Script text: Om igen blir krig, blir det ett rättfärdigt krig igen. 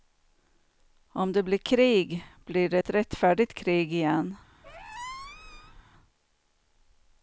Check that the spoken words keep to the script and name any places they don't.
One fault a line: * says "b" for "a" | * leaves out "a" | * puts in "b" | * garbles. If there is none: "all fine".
* says "det" for "igen"